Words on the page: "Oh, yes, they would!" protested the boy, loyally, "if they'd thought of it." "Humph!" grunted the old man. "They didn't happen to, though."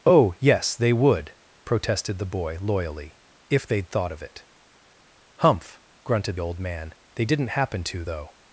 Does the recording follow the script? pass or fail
fail